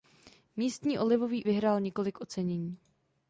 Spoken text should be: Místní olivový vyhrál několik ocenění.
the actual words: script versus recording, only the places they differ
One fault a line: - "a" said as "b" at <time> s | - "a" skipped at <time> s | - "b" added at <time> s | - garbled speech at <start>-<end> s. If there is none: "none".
none